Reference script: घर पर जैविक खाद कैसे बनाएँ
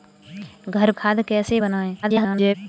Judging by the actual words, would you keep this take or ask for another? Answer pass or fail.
fail